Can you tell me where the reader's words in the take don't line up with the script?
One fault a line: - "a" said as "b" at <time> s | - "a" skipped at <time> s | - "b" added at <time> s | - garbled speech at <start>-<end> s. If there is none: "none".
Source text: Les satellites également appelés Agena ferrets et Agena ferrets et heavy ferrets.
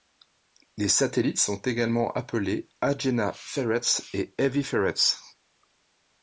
- "sont" added at 1.4 s
- "Agena ferrets et" skipped at 4.3 s